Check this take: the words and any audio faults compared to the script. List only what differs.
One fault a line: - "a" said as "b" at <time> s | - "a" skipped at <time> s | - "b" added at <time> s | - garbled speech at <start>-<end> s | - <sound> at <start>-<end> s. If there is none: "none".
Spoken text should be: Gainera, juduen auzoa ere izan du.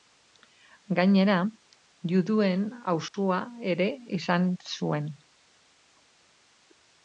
- dropout at 3.1-3.1 s
- "du" said as "zuen" at 4.7 s